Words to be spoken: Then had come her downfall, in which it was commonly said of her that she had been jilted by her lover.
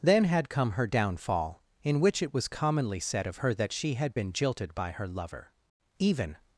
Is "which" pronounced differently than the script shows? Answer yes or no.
no